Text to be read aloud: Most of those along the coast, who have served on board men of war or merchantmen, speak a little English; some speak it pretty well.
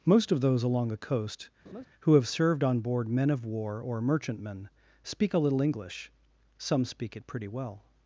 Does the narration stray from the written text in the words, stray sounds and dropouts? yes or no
yes